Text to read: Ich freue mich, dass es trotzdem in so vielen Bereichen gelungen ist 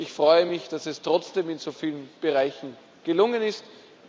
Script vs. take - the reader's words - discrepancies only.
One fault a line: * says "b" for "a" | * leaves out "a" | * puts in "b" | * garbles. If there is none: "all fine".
all fine